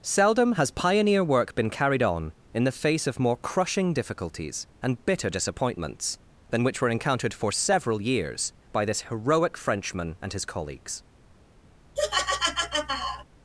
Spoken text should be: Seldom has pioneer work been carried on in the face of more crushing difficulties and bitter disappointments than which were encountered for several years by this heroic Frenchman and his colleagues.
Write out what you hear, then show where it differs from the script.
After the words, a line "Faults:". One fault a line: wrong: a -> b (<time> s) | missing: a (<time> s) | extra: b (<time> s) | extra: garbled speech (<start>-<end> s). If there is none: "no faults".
Seldom has pioneer work been carried on in the face of more crushing difficulties and bitter disappointments than which were encountered for several years by this heroic Frenchman and his colleagues.
Faults:
no faults